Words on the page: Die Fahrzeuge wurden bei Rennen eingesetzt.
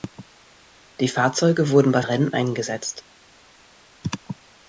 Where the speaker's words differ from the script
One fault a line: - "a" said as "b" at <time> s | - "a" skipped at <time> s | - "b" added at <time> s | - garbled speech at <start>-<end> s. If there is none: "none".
none